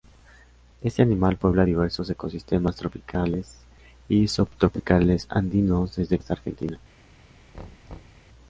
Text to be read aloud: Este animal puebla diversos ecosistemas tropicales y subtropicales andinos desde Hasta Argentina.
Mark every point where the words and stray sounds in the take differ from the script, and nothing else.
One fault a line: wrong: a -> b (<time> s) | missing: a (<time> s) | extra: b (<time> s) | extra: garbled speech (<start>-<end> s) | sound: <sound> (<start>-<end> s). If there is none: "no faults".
sound: thud (7.5-8.3 s)